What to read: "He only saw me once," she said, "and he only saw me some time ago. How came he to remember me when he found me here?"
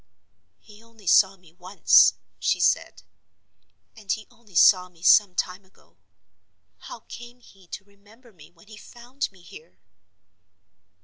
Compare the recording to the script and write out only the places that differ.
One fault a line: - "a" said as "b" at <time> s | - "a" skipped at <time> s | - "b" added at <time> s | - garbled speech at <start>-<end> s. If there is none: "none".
none